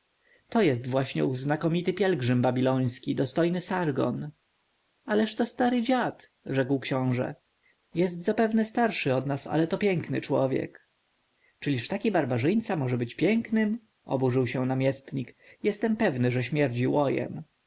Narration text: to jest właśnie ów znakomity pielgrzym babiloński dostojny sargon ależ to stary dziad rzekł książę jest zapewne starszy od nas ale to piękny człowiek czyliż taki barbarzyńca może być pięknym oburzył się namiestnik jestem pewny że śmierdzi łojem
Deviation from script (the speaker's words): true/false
false